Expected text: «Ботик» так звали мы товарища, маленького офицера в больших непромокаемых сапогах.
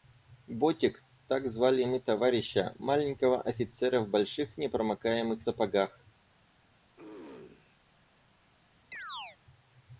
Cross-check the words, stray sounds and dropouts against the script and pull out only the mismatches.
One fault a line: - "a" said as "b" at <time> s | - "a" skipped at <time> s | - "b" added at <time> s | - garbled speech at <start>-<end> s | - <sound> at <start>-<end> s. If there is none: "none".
- throat clearing at 7.0-7.8 s
- chirp at 8.9-9.4 s